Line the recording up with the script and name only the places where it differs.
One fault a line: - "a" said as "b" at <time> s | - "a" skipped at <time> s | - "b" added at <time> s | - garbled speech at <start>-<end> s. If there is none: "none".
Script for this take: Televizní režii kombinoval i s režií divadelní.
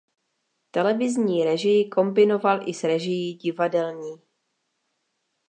none